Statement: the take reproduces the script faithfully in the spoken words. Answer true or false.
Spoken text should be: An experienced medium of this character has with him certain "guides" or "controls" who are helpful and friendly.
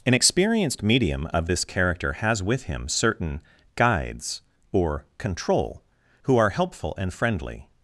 false